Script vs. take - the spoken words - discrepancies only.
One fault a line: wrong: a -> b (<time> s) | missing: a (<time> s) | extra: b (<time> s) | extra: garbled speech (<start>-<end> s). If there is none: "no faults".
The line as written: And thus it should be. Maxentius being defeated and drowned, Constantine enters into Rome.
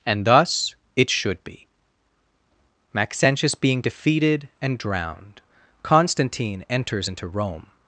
no faults